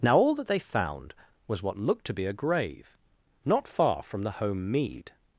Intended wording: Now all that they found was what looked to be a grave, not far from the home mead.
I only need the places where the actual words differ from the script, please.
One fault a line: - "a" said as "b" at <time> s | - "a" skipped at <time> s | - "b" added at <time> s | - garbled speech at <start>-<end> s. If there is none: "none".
none